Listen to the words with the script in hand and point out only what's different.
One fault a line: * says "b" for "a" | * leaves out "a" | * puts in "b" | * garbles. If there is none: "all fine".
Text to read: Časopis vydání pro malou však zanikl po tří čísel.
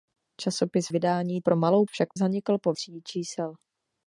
all fine